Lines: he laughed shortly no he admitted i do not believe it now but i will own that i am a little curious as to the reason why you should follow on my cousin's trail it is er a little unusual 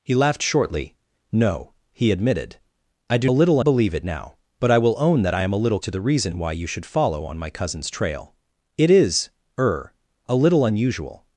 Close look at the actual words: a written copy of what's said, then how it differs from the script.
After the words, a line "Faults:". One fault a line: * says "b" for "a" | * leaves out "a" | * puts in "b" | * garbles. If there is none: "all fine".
he laughed shortly no he admitted i do little believe it now but i will own that i am a little to the reason why you should follow on my cousin's trail it is er a little unusual
Faults:
* says "little" for "not"
* leaves out "curious as"